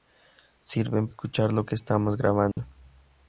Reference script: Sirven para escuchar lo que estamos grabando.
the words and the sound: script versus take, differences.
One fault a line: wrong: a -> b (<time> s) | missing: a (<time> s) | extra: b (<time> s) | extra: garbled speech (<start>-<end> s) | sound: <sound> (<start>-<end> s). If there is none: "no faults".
missing: para (1.1 s)
sound: dropout (2.5-2.6 s)